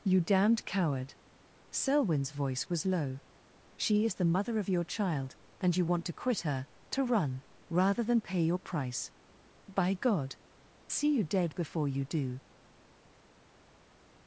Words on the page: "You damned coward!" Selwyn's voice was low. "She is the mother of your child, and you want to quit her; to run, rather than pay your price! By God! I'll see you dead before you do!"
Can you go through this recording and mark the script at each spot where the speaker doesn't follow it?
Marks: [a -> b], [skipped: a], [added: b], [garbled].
"You damned coward!" Selwyn's voice was low. "She is the mother of your child, and you want to quit her; to run, rather than pay your price! By God! [skipped: I'll] see you dead before you do!"